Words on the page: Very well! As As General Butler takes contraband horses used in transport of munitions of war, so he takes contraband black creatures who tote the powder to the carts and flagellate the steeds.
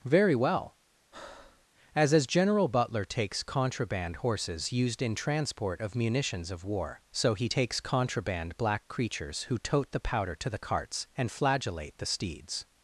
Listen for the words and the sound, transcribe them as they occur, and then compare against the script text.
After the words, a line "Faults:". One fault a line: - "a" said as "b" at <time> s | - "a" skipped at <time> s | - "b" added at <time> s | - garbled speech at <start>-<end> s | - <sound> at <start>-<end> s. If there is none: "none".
Very well! As As General Butler takes contraband horses used in transport of munitions of war, so he takes contraband black creatures who tote the powder to the carts and flagellate the steeds.
Faults:
- breath at 1.1-1.7 s